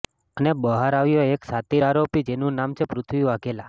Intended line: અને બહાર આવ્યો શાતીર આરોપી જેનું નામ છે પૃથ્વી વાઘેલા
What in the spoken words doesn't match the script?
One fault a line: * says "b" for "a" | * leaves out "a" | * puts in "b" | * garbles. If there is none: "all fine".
* puts in "એક"